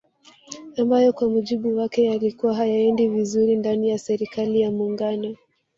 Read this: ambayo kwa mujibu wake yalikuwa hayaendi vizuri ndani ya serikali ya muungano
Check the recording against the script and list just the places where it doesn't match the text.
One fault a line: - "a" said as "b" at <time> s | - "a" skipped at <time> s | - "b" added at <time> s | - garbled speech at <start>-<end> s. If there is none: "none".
none